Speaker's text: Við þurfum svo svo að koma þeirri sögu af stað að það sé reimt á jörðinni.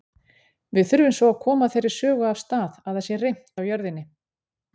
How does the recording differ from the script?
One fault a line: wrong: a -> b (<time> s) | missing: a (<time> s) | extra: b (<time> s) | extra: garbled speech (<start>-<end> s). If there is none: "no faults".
missing: svo (1.3 s)